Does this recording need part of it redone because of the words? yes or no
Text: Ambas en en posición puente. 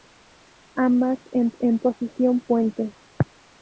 no